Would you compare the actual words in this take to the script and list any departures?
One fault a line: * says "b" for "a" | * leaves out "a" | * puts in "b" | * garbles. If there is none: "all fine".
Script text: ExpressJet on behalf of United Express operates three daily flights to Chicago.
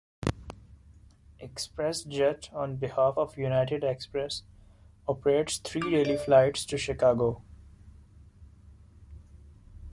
all fine